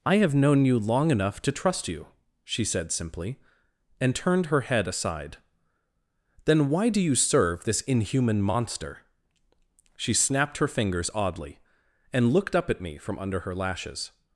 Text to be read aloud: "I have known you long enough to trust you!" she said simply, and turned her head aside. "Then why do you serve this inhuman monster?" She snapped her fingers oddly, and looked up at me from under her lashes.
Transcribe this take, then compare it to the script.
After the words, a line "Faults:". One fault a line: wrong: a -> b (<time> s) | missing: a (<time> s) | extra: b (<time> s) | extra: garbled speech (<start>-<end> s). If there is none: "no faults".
"I have known you long enough to trust you!" she said simply, and turned her head aside. "Then why do you serve this inhuman monster?" She snapped her fingers oddly, and looked up at me from under her lashes.
Faults:
no faults